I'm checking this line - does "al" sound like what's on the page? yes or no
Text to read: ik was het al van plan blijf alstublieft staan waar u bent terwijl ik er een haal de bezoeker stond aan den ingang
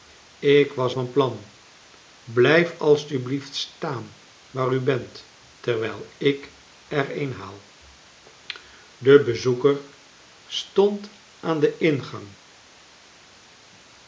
no